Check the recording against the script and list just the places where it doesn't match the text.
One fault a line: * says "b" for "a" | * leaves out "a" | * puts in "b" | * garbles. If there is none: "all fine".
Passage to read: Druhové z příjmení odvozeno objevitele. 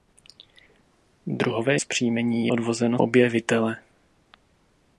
all fine